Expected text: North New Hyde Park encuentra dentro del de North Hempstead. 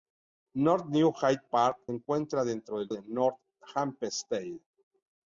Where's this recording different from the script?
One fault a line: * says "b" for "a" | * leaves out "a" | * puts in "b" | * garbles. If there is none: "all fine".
all fine